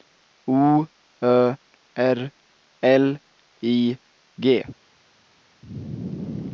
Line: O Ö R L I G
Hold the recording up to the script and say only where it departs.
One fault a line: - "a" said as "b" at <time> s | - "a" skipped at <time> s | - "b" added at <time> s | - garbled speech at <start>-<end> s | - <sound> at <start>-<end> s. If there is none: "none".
none